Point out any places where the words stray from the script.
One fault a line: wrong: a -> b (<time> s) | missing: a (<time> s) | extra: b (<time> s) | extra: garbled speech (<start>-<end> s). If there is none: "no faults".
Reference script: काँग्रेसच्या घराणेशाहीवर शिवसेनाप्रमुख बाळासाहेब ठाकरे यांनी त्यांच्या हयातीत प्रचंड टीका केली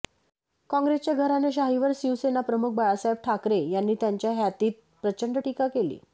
no faults